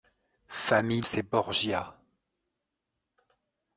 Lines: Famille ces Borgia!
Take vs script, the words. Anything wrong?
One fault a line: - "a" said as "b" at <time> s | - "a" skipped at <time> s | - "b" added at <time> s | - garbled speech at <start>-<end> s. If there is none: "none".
none